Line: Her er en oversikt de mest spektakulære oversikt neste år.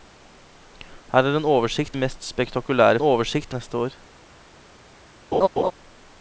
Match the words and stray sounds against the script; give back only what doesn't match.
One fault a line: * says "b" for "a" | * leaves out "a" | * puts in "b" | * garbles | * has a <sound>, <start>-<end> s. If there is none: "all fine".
* has a laugh, 5.3-5.7 s